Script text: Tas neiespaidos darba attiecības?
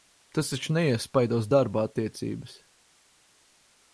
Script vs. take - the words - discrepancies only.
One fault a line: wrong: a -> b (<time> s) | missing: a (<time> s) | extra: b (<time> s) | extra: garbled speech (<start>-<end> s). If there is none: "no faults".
extra: taču (0.5 s)